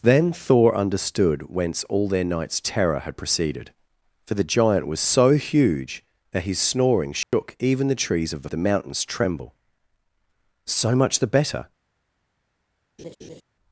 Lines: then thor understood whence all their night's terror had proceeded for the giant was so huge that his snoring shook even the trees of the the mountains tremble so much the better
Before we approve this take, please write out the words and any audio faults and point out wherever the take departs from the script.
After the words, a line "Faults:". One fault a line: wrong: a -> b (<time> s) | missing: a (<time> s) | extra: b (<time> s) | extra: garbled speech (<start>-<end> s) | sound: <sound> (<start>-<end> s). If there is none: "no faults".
then thor understood whence all their night's terror had proceeded for the giant was so huge that his snoring shook even the trees of the the mountains tremble so much the better
Faults:
sound: dropout (7.2-7.3 s)
sound: laugh (13.0-13.4 s)